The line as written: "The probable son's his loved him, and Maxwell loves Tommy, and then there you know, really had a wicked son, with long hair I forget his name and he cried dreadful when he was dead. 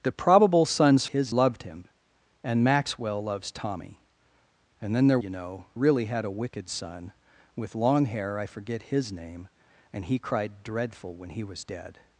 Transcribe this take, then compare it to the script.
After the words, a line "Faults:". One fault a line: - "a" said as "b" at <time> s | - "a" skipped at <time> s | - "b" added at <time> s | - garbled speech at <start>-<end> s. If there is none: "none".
"The probable son's his loved him, and Maxwell loves Tommy, and then there you know, really had a wicked son, with long hair I forget his name and he cried dreadful when he was dead.
Faults:
none